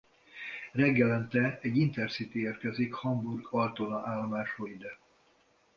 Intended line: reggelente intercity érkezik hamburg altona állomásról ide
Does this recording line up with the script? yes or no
no